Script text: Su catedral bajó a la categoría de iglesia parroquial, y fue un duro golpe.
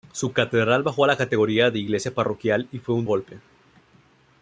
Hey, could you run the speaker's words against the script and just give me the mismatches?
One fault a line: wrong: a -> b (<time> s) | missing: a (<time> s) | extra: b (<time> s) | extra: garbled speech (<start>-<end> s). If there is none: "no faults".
missing: duro (3.0 s)